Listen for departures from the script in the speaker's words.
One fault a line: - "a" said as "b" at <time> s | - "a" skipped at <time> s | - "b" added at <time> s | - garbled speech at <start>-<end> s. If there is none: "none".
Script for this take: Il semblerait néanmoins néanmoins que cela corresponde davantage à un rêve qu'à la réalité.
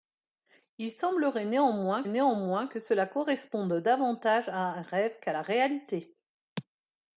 none